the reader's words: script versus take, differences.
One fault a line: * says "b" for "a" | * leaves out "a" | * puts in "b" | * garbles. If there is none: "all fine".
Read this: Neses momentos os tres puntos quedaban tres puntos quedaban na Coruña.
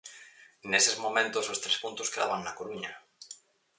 * leaves out "tres puntos quedaban"